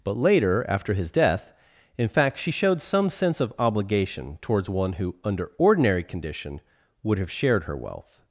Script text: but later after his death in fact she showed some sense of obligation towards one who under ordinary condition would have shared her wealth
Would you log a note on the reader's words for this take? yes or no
no